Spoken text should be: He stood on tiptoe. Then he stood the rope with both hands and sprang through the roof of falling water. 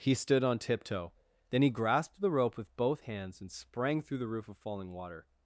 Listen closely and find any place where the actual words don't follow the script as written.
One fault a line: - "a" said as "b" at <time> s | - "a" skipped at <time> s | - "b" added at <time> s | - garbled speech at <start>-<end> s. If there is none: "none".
- "stood" said as "grasped" at 1.7 s